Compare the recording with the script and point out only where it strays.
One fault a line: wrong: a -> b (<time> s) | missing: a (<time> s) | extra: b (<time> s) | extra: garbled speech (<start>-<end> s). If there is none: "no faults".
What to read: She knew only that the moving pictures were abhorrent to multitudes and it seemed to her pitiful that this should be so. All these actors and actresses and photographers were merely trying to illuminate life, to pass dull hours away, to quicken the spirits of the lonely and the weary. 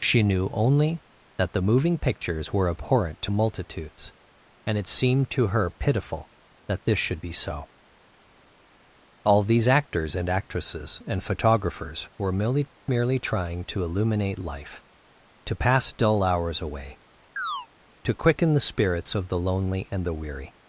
extra: merely (12.9 s)